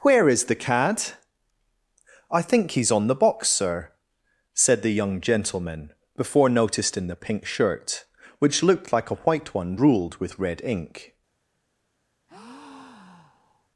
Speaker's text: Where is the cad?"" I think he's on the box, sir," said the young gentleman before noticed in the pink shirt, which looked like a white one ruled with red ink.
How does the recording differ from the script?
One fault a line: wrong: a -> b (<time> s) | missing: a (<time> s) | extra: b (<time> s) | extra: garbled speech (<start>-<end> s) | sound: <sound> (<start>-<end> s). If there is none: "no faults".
sound: breath (12.3-13.7 s)